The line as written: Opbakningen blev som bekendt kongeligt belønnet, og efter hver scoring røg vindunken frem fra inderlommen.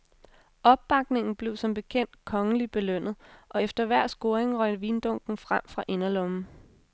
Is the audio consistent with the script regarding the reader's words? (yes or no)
yes